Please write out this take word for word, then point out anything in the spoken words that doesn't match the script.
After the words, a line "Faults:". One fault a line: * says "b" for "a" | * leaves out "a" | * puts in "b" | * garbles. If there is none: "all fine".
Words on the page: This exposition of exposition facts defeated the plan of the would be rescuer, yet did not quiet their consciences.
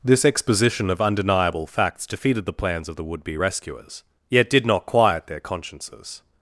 This exposition of undeniable facts defeated the plans of the would be rescuers, yet did not quiet their consciences.
Faults:
* says "undeniable" for "exposition"
* says "plans" for "plan"
* says "rescuers" for "rescuer"